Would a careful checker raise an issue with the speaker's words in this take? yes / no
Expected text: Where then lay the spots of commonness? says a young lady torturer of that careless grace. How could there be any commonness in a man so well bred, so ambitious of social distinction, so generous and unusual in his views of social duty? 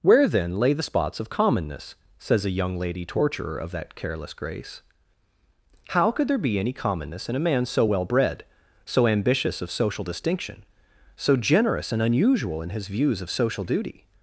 no